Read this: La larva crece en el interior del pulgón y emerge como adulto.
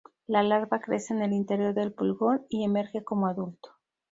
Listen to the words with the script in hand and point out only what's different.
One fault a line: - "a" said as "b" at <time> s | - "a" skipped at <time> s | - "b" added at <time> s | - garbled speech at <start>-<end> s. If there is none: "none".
none